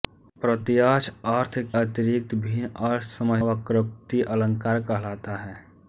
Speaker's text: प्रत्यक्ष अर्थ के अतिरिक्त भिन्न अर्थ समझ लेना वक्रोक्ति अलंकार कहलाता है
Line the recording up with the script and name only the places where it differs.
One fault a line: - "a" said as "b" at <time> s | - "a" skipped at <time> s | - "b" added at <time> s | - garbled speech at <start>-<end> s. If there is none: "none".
- "के" skipped at 1.6 s
- "लेना" skipped at 3.4 s